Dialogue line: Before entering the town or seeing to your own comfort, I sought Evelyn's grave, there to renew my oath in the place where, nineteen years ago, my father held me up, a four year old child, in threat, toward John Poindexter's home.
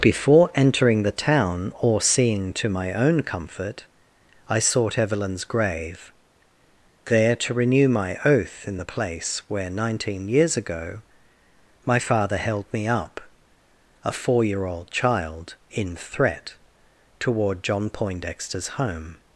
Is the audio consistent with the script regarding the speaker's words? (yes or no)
no